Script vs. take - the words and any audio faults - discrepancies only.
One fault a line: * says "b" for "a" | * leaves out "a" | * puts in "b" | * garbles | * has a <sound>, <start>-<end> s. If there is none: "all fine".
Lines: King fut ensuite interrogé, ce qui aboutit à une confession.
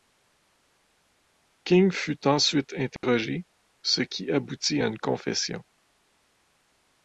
* has a dropout, 3.0-3.0 s